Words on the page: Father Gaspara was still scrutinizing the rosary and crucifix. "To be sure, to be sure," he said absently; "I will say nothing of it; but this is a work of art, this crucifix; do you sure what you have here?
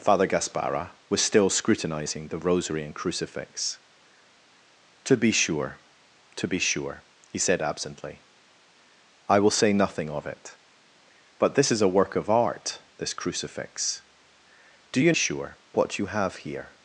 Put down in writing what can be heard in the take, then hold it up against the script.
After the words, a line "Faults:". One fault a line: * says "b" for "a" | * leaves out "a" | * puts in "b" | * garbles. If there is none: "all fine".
Father Gaspara was still scrutinizing the rosary and crucifix. "To be sure, to be sure," he said absently; "I will say nothing of it; but this is a work of art, this crucifix; do you sure what you have here?
Faults:
all fine